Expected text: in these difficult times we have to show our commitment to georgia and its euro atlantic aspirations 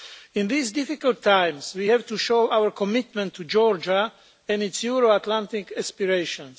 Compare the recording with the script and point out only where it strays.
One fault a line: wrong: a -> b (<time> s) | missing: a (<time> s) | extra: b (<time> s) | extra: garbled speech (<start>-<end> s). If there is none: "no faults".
no faults